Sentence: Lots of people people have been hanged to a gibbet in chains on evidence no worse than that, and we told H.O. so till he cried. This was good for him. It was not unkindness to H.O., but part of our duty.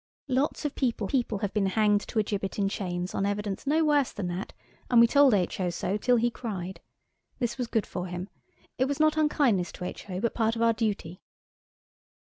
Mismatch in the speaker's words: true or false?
false